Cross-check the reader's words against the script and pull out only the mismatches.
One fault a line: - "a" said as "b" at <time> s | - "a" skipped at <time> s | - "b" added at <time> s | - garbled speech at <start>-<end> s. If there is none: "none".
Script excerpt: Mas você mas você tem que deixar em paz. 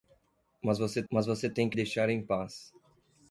none